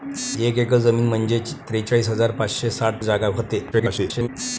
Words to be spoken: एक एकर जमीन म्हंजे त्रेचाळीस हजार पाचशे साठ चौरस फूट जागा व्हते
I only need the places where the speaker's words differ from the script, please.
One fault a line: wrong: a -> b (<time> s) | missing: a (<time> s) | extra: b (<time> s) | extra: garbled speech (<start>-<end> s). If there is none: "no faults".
missing: चौरस फूट (3.0 s)
extra: garbled speech (3.7-4.3 s)